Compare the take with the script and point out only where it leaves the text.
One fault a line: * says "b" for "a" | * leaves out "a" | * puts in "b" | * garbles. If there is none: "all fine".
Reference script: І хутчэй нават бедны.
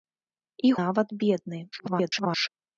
* leaves out "хутчэй"
* garbles